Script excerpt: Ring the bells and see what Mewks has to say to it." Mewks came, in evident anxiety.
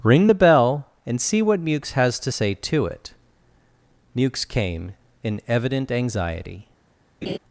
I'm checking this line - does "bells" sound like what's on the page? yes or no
no